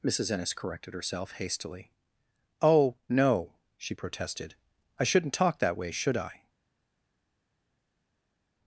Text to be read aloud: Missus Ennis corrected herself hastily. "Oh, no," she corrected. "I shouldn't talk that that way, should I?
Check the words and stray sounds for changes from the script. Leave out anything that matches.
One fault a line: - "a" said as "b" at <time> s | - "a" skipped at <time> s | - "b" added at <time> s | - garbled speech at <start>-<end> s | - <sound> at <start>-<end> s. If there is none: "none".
- "corrected" said as "protested" at 3.9 s
- "that" skipped at 5.8 s